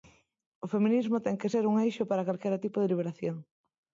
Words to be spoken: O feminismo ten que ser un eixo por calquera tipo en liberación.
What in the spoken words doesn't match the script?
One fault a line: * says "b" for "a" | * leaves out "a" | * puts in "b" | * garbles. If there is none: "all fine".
* says "para" for "por"
* says "de" for "en"